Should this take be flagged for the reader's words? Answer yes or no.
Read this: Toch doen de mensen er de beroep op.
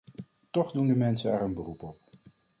yes